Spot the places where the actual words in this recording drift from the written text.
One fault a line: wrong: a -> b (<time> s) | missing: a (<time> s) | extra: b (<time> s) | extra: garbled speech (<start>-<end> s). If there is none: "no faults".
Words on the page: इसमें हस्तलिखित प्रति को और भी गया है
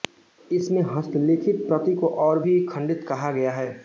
extra: खंडित कहा (2.7 s)